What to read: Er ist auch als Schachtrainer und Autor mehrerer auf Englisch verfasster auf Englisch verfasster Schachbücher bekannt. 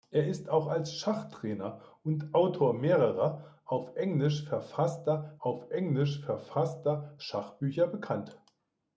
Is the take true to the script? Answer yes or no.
yes